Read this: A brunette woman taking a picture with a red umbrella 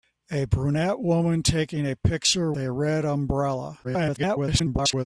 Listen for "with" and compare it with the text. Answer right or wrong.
wrong